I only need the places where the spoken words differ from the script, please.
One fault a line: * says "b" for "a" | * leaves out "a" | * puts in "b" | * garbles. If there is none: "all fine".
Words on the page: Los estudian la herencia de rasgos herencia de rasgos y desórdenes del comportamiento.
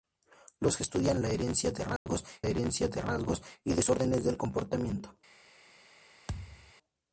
all fine